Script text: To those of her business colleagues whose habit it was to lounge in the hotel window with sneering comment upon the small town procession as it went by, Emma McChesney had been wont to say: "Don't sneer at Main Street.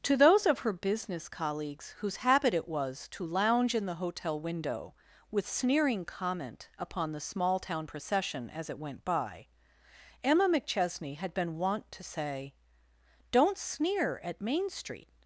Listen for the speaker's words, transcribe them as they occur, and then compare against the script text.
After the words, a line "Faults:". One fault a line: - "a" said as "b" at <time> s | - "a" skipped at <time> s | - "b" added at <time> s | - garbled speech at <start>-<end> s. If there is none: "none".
To those of her business colleagues whose habit it was to lounge in the hotel window with sneering comment upon the small town procession as it went by, Emma McChesney had been wont to say: "Don't sneer at Main Street.
Faults:
none